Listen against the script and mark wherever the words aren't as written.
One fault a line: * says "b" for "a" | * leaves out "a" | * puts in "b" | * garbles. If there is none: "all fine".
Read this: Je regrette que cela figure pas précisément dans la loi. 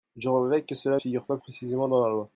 all fine